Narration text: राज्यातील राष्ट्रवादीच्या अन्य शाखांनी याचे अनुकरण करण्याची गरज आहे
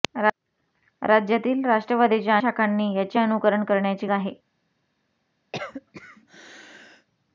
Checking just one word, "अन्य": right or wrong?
wrong